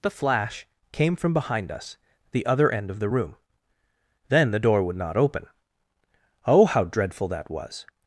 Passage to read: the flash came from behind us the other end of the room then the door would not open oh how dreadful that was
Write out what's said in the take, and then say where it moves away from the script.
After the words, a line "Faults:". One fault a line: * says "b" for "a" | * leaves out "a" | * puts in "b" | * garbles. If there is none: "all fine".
the flash came from behind us the other end of the room then the door would not open oh how dreadful that was
Faults:
all fine